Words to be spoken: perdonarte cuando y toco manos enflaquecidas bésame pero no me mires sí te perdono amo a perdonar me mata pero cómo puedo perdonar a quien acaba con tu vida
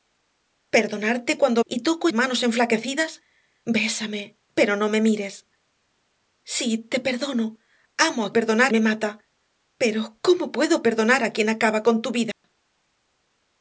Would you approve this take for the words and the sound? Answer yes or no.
no